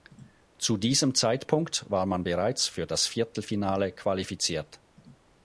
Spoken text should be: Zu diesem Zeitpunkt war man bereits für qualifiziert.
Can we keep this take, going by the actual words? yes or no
no